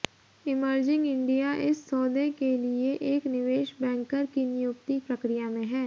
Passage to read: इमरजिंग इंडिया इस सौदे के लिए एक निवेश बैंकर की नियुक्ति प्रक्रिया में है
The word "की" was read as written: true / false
true